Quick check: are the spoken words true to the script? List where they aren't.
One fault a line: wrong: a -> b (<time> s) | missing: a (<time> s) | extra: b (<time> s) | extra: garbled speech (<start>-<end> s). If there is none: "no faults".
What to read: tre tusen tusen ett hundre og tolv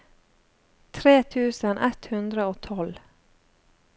missing: tusen (1.8 s)